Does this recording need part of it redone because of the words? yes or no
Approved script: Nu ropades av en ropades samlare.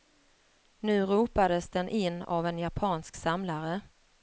yes